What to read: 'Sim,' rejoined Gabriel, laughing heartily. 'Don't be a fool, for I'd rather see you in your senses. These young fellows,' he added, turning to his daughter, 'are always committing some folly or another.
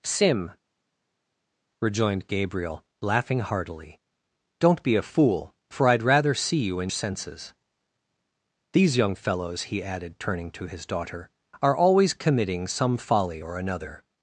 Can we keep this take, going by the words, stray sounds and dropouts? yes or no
no